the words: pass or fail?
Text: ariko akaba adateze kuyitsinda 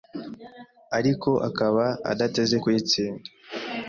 pass